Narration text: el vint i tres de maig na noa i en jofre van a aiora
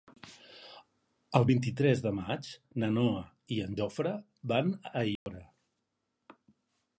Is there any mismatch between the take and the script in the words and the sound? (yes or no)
yes